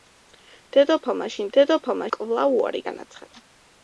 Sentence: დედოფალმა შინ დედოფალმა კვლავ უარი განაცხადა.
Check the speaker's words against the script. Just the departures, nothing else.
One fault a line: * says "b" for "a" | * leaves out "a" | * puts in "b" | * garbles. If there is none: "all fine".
all fine